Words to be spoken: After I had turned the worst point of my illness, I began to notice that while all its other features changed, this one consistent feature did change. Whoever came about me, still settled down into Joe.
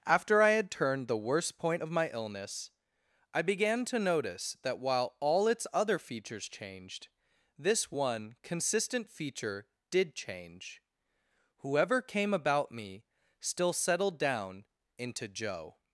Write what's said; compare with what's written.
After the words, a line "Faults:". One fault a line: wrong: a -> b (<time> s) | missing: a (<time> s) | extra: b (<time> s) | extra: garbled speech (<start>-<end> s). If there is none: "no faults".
After I had turned the worst point of my illness, I began to notice that while all its other features changed, this one consistent feature did change. Whoever came about me, still settled down into Joe.
Faults:
no faults